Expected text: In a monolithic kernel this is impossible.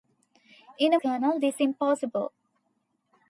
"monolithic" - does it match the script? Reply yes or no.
no